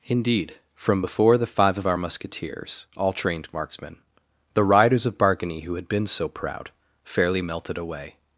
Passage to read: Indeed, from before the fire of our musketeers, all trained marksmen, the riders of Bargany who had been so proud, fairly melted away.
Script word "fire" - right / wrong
wrong